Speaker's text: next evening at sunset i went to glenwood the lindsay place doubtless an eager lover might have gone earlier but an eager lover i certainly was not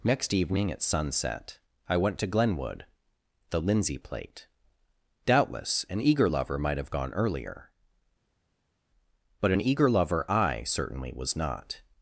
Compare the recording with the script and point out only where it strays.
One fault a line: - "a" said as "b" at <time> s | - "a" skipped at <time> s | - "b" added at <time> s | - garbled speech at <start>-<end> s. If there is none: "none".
- "place" said as "plate" at 4.0 s